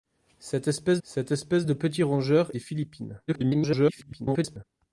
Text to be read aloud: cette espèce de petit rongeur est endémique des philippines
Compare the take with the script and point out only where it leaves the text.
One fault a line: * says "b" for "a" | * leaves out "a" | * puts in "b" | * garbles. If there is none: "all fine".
* puts in "cette espèce"
* leaves out "est endémique"
* garbles